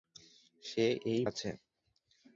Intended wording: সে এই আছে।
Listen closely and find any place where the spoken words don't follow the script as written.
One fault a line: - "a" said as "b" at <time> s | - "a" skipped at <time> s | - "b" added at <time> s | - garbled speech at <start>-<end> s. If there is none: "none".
none